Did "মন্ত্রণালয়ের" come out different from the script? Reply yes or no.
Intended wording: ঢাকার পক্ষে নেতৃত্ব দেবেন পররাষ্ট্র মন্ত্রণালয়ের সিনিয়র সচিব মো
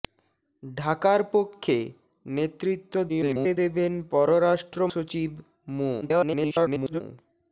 yes